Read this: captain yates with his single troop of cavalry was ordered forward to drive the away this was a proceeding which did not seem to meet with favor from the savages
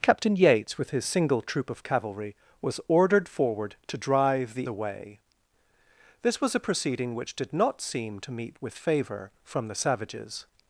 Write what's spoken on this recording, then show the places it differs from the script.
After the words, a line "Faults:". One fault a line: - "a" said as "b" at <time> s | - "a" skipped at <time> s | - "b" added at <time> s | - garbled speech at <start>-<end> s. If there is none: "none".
captain yates with his single troop of cavalry was ordered forward to drive the away this was a proceeding which did not seem to meet with favor from the savages
Faults:
none